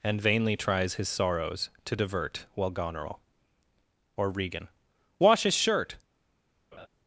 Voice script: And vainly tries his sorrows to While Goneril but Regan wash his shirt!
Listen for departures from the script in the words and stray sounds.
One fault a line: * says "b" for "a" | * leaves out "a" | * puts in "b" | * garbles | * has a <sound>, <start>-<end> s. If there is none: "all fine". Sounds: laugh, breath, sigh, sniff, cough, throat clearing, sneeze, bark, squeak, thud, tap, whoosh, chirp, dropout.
* puts in "divert"
* says "or" for "but"
* has a laugh, 6.7-6.9 s